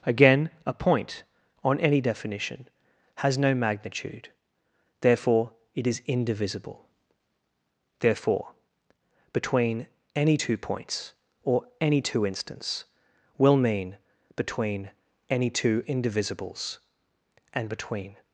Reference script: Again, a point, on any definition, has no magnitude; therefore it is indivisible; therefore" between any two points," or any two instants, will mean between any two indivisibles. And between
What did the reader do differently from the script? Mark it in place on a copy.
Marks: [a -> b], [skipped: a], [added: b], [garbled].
Again, a point, on any definition, has no magnitude; therefore it is indivisible; therefore" between any two points," or any two instants, will mean between any two indivisibles. And between